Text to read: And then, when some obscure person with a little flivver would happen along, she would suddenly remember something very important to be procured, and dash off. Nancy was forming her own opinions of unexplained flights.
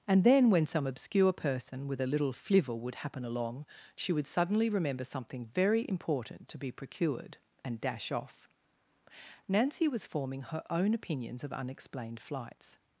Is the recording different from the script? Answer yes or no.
no